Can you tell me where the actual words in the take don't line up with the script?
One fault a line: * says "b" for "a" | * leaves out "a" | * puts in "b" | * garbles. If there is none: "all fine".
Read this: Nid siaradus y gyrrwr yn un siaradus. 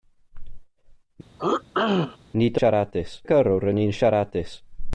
all fine